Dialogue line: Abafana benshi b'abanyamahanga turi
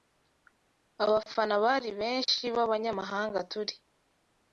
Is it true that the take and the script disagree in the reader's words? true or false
true